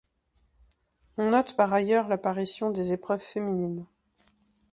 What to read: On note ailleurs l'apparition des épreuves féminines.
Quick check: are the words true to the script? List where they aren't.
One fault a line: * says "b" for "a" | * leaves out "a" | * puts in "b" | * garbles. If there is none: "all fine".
* puts in "par"